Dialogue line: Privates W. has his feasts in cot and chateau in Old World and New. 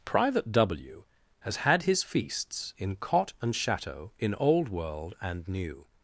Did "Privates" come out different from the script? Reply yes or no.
yes